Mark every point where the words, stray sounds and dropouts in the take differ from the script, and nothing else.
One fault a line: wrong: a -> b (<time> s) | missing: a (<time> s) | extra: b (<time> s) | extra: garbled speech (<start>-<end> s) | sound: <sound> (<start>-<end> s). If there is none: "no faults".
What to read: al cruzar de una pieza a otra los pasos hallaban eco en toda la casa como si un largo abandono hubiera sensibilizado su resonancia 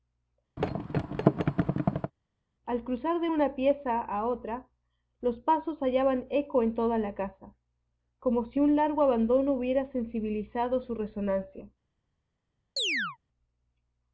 sound: thud (0.6-2.1 s)
sound: chirp (12.8-13.2 s)